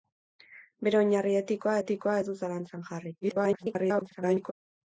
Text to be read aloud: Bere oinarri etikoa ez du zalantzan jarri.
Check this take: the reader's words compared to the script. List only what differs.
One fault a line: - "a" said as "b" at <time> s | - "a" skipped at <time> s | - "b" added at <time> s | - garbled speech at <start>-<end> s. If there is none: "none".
- "etikoa" added at 1.8 s
- garbled speech at 3.2-4.5 s